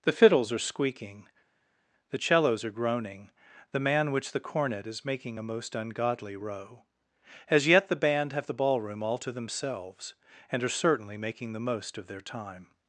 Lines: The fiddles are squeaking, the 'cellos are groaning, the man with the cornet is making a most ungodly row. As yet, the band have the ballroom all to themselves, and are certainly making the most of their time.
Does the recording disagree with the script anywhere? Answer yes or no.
yes